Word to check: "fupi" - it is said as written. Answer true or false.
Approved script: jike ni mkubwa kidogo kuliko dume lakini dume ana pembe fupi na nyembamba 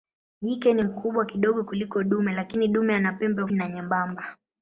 false